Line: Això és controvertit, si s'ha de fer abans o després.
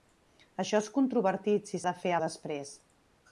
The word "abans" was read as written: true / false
false